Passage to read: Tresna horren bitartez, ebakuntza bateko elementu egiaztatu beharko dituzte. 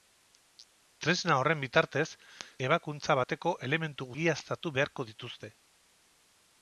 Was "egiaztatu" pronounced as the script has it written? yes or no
yes